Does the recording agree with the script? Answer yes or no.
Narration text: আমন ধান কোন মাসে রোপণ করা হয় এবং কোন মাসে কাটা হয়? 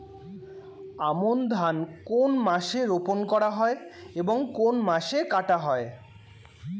yes